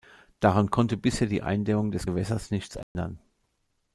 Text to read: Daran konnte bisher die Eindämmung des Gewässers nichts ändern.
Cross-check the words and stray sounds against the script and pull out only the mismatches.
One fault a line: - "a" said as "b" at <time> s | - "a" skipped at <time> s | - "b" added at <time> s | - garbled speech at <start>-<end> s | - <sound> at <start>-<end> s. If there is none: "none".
- dropout at 2.8-3.0 s